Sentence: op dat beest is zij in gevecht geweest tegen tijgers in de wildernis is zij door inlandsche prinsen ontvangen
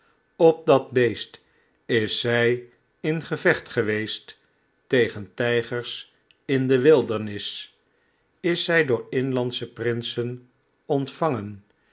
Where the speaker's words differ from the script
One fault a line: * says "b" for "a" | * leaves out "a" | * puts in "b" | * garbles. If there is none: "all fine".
all fine